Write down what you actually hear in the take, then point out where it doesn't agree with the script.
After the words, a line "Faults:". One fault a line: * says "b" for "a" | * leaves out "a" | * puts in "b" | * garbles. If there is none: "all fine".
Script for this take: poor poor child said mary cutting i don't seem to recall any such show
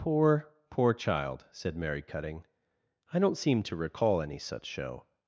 poor poor child said mary cutting i don't seem to recall any such show
Faults:
all fine